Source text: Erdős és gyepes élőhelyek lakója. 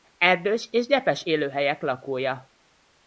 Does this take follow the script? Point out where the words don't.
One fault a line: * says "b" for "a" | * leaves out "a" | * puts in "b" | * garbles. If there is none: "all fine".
all fine